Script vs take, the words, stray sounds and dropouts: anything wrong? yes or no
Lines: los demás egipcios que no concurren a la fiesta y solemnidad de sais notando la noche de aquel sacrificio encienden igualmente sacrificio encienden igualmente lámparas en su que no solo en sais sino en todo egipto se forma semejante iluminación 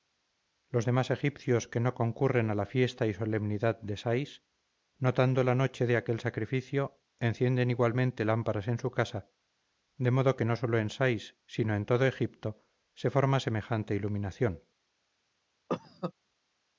yes